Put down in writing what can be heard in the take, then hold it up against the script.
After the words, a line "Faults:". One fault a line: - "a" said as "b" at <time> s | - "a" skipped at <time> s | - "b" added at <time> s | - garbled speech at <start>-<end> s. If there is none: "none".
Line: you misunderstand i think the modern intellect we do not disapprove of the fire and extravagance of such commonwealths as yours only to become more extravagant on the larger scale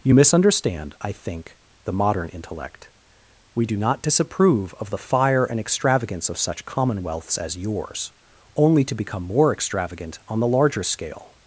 you misunderstand i think the modern intellect we do not disapprove of the fire and extravagance of such commonwealths as yours only to become more extravagant on the larger scale
Faults:
none